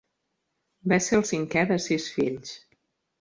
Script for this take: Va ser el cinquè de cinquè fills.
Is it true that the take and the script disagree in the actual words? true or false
true